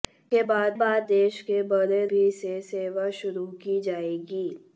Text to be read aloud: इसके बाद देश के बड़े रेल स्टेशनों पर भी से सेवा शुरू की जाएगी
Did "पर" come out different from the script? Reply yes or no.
yes